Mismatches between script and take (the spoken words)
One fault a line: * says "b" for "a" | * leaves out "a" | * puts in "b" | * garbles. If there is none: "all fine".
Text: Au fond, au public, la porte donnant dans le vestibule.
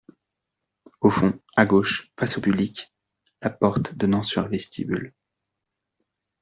* puts in "à gauche face"
* says "sur" for "dans"